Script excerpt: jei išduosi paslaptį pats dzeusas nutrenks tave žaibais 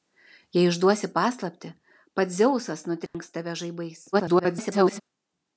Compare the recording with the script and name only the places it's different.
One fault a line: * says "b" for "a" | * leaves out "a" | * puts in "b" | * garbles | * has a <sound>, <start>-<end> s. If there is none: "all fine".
* has a dropout, 3.1-3.1 s
* garbles